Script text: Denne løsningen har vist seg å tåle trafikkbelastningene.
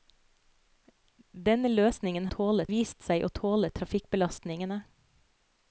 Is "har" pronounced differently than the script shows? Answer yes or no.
yes